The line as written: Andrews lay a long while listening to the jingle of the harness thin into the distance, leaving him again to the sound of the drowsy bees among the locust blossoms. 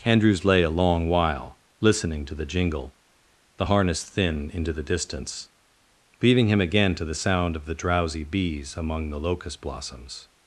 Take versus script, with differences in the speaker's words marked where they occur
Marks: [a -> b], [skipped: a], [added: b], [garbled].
Andrews lay a long while listening to the jingle [skipped: of] the harness thin into the distance, leaving him again to the sound of the drowsy bees among the locust blossoms.